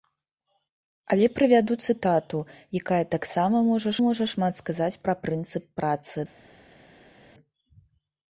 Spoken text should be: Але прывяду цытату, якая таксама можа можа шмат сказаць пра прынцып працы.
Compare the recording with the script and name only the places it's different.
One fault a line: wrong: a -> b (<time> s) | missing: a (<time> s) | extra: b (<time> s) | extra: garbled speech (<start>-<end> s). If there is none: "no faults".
no faults